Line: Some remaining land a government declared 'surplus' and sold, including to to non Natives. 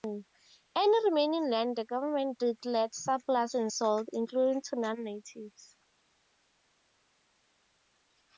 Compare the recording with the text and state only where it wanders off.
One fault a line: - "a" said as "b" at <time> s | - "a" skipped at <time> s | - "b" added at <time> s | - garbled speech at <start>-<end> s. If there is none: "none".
- "Some" said as "Any" at 0.8 s
- "a" said as "the" at 1.8 s
- "to" skipped at 4.8 s